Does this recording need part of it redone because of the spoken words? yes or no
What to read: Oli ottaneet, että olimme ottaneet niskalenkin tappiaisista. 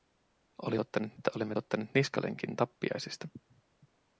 no